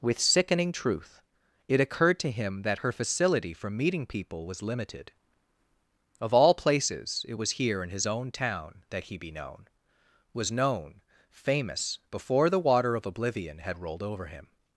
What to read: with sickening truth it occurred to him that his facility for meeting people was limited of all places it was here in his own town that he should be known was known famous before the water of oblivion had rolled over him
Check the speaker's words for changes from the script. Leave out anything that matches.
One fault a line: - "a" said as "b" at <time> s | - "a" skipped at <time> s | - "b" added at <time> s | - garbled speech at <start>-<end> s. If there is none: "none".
- "his" said as "her" at 2.8 s
- "should" skipped at 9.2 s